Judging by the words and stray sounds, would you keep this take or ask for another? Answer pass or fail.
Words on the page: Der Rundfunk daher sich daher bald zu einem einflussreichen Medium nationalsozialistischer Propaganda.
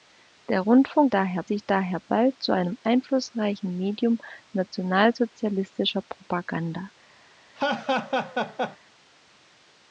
fail